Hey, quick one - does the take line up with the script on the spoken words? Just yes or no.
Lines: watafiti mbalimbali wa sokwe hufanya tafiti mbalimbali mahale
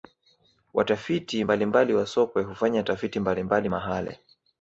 yes